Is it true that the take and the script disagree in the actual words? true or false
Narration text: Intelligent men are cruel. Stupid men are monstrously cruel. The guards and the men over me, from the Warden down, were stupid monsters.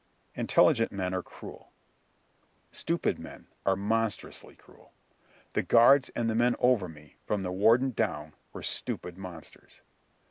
false